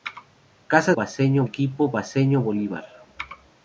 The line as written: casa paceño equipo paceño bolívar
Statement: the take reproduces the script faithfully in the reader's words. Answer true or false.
true